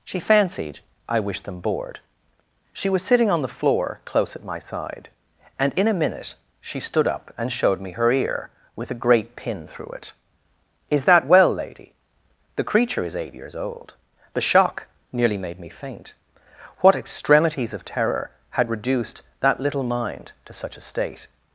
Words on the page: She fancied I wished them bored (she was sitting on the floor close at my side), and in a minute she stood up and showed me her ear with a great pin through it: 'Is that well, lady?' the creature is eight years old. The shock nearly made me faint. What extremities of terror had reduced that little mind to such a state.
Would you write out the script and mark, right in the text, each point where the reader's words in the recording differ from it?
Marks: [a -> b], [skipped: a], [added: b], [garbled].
She fancied I wished them bored (she was sitting on the floor close at my side), and in a minute she stood up and showed me her ear with a great pin through it: 'Is that well, lady?' the creature is eight years old. The shock nearly made me faint. What extremities of terror had reduced that little mind to such a state.